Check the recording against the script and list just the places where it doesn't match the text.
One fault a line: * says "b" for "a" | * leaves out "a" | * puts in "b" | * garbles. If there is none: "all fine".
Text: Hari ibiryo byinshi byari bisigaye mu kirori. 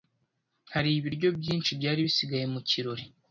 all fine